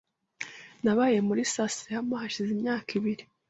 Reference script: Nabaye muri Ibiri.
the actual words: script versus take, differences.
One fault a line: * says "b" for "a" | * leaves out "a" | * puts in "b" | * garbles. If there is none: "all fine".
* puts in "Sasayama hashize imyaka"